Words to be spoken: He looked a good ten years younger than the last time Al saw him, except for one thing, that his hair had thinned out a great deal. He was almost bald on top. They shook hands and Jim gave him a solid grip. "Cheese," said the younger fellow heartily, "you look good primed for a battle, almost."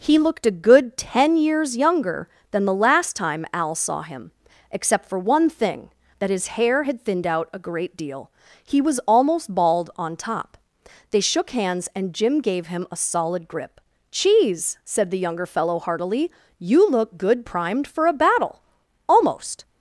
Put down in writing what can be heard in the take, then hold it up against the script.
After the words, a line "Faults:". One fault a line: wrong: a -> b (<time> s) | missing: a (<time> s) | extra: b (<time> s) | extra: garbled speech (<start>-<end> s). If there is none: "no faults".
He looked a good ten years younger than the last time Al saw him, except for one thing, that his hair had thinned out a great deal. He was almost bald on top. They shook hands and Jim gave him a solid grip. "Cheese," said the younger fellow heartily, "you look good primed for a battle, almost."
Faults:
no faults